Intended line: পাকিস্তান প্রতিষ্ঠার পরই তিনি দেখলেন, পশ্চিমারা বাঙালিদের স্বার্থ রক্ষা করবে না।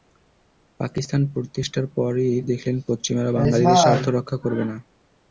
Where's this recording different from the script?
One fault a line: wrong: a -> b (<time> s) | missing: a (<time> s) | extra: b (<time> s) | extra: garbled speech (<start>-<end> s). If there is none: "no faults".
missing: তিনি (2.3 s)